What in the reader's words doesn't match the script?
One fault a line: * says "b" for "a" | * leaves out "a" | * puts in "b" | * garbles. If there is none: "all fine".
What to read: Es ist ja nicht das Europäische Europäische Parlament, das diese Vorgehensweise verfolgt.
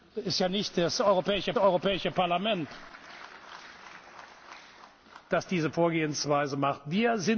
all fine